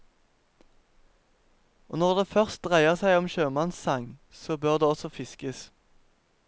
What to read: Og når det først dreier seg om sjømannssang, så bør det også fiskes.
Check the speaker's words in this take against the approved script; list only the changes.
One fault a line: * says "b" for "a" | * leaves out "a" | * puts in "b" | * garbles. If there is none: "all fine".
all fine